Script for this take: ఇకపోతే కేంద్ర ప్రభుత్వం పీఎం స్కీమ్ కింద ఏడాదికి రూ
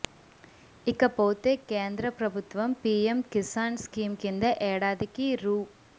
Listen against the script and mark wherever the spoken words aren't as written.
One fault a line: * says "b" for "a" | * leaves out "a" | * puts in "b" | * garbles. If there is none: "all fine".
* puts in "కిసాన్"